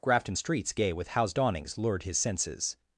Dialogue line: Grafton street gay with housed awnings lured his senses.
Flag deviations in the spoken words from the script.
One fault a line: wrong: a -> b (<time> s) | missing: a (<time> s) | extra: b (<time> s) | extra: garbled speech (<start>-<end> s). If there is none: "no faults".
wrong: street -> streets (0.3 s)